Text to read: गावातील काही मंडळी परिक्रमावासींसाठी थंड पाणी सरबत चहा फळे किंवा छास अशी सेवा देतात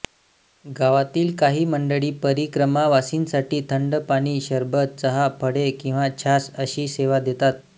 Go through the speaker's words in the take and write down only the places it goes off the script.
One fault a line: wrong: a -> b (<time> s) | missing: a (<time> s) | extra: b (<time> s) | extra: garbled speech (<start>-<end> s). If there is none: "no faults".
no faults